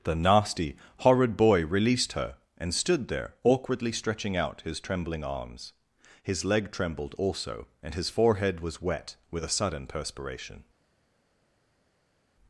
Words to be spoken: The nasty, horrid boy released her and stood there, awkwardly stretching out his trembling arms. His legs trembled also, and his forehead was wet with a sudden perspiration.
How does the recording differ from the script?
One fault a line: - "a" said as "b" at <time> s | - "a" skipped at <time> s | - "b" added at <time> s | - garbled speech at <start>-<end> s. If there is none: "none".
- "legs" said as "leg" at 6.5 s